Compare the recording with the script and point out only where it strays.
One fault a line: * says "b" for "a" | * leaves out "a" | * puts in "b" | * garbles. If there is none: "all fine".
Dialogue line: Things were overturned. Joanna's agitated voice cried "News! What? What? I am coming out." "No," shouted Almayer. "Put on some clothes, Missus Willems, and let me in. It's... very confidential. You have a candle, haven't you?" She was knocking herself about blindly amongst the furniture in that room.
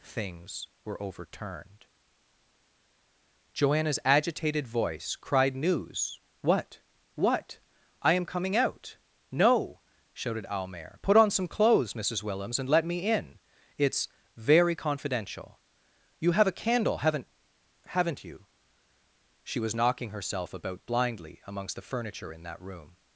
* puts in "haven't"